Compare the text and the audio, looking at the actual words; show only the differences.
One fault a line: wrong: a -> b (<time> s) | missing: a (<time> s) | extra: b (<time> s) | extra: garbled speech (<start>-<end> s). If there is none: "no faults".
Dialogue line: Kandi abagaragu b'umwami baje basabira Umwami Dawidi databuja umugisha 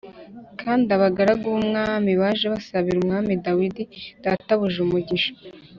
no faults